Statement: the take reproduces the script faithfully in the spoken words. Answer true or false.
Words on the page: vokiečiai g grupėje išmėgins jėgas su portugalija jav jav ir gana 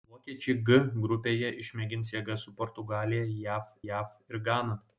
true